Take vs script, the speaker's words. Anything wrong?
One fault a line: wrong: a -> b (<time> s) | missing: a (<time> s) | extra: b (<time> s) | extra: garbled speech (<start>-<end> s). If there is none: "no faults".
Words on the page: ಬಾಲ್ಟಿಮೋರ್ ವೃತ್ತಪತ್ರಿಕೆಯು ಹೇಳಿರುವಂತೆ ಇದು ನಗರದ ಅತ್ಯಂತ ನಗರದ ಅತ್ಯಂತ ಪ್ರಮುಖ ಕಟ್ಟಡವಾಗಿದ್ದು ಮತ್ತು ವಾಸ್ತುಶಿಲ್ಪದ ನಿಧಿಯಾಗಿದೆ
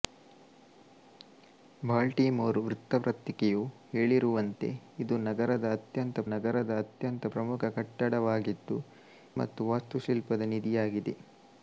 no faults